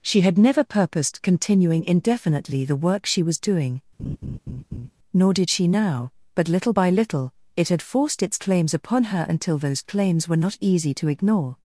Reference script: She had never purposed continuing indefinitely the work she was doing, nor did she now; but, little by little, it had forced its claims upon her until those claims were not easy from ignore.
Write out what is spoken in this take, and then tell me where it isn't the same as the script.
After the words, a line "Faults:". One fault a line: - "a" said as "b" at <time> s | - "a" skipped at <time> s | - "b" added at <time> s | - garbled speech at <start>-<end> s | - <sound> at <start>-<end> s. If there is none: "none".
She had never purposed continuing indefinitely the work she was doing, nor did she now; but, little by little, it had forced its claims upon her until those claims were not easy to ignore.
Faults:
- laugh at 4.0-4.9 s
- "from" said as "to" at 10.9 s